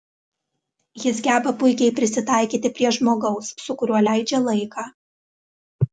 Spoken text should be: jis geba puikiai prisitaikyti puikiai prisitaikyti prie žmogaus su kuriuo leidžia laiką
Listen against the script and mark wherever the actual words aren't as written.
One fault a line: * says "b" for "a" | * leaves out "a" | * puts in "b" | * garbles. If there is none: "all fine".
* leaves out "puikiai prisitaikyti"